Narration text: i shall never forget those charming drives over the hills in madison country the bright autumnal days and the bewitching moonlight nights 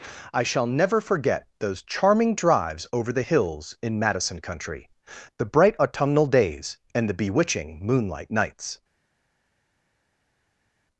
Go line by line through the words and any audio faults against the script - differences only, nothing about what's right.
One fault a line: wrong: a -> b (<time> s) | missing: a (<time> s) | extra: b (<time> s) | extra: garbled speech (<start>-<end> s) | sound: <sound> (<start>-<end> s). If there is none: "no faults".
no faults